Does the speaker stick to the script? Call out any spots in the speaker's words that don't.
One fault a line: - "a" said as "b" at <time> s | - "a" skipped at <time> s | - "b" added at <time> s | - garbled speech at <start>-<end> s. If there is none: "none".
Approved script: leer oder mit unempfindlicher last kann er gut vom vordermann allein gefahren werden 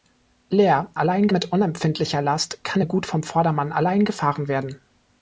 - "oder" said as "allein" at 1.0 s